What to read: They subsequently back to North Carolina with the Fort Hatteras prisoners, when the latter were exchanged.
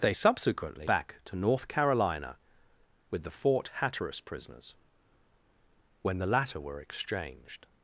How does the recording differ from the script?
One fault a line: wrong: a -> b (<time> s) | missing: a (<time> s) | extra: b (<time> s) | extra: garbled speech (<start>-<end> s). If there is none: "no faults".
no faults